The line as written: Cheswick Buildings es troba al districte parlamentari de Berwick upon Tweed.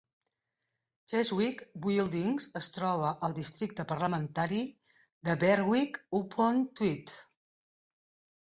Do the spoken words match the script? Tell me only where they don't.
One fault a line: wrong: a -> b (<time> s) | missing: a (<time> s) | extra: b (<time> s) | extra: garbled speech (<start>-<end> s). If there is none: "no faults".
no faults